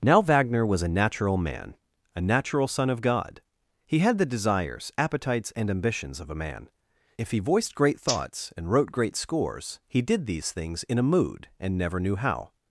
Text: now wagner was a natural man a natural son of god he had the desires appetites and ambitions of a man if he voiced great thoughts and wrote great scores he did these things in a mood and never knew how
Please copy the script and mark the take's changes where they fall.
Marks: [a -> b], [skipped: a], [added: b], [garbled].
now wagner was a natural man a natural son of god he had the desires appetites and ambitions of a man if he voiced great thoughts and wrote great scores he did these things in a mood and never knew how